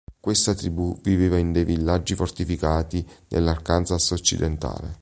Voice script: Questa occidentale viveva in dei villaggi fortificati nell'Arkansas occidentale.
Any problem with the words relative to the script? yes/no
yes